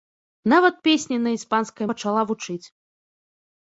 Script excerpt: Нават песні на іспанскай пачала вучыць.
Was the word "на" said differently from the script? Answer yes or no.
no